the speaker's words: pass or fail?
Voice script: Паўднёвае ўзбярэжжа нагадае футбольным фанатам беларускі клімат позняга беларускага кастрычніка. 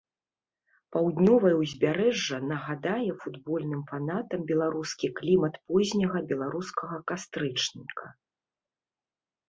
pass